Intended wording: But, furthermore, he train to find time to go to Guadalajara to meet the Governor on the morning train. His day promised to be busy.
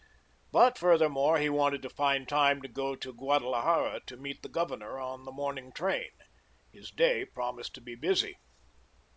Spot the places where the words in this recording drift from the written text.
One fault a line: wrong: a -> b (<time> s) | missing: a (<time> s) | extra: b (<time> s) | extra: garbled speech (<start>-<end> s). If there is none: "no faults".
wrong: train -> wanted (1.5 s)